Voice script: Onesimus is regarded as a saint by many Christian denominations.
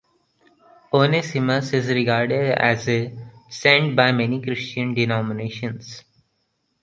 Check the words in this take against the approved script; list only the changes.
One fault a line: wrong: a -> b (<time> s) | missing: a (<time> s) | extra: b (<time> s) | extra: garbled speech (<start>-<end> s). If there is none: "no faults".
no faults